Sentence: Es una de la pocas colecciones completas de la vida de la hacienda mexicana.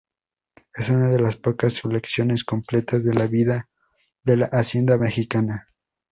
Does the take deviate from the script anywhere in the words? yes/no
yes